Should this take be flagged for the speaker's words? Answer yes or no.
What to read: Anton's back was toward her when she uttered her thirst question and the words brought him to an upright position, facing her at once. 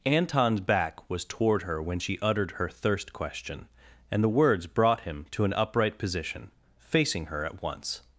no